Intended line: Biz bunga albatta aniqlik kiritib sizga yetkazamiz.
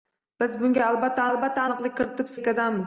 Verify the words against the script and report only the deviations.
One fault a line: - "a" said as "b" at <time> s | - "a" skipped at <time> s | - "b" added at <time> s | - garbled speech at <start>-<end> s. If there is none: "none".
- "albatta" added at 1.3 s
- "sizga" skipped at 2.3 s